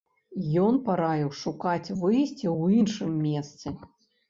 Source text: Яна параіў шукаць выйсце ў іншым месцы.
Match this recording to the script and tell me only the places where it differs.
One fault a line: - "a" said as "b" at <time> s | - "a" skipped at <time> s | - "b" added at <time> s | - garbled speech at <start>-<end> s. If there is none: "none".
- "Яна" said as "Ён" at 0.6 s